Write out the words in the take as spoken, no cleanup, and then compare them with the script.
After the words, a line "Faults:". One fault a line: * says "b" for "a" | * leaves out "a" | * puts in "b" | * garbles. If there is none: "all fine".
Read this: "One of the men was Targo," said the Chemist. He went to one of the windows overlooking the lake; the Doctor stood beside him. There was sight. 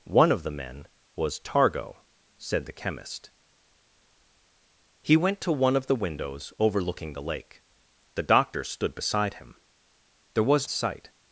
"One of the men was Targo," said the Chemist. He went to one of the windows overlooking the lake; the Doctor stood beside him. There was sight.
Faults:
all fine